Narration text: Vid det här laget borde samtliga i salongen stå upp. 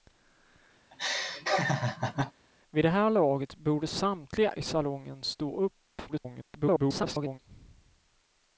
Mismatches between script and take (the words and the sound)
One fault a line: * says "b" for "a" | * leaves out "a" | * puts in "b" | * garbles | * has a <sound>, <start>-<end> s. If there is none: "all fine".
* has a laugh, 0.9-2.3 s
* garbles